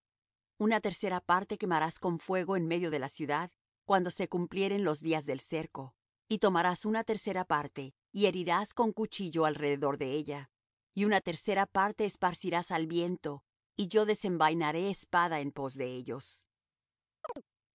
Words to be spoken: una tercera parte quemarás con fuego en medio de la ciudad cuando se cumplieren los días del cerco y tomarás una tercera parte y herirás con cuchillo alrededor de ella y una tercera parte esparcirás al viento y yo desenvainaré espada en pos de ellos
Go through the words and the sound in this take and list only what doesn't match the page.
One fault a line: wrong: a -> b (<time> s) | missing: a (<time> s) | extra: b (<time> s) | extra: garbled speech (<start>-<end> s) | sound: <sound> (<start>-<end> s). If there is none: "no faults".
sound: chirp (17.2-17.4 s)